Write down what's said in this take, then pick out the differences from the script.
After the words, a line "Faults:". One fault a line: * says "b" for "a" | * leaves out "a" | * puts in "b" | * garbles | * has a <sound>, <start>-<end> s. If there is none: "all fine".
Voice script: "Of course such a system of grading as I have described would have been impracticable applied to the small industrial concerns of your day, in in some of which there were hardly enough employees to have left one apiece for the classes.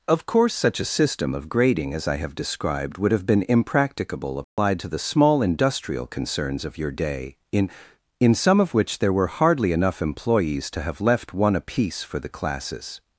"Of course such a system of grading as I have described would have been impracticable applied to the small industrial concerns of your day, in in some of which there were hardly enough employees to have left one apiece for the classes.
Faults:
* has a dropout, 4.4-4.6 s